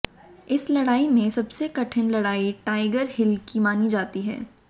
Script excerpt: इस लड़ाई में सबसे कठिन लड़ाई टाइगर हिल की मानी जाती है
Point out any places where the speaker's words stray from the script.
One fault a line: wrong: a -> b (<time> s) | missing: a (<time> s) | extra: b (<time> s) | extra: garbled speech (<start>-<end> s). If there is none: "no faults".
no faults